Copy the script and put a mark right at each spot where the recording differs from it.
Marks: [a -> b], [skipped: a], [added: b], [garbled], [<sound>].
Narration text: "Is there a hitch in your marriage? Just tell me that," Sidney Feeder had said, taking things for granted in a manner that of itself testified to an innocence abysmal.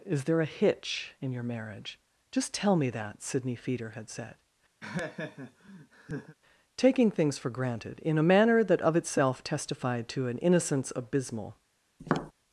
"Is there a hitch in your marriage? Just tell me that," Sidney Feeder had said, [laugh] taking things for granted in a manner that of itself testified to an innocence abysmal. [tap]